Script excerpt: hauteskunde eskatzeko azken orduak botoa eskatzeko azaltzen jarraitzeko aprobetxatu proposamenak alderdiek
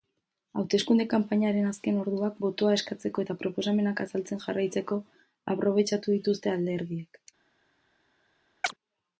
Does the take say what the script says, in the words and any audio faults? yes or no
no